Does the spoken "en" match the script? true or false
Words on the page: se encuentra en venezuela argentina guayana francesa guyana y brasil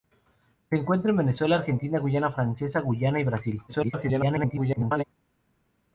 true